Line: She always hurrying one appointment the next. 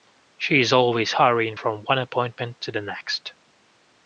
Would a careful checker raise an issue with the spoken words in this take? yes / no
yes